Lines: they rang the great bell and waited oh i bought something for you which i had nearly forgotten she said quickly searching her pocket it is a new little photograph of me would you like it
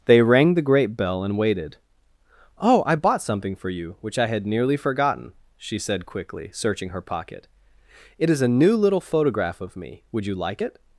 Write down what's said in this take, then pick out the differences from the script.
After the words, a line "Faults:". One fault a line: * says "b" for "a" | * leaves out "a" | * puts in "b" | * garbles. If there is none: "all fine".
they rang the great bell and waited oh i bought something for you which i had nearly forgotten she said quickly searching her pocket it is a new little photograph of me would you like it
Faults:
all fine